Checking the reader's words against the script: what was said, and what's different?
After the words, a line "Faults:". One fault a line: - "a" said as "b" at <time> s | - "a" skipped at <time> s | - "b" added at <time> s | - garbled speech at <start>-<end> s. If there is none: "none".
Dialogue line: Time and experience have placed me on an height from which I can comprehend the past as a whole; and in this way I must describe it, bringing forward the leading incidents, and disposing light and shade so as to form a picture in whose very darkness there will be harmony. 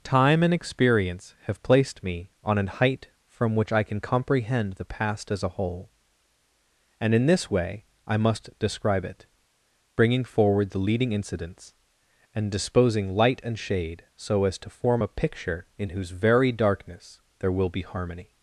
Time and experience have placed me on an height from which I can comprehend the past as a whole; and in this way I must describe it, bringing forward the leading incidents, and disposing light and shade so as to form a picture in whose very darkness there will be harmony.
Faults:
none